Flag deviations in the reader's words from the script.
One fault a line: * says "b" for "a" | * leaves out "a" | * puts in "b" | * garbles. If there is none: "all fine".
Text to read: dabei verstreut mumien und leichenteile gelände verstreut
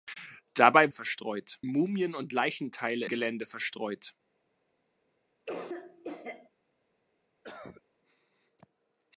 all fine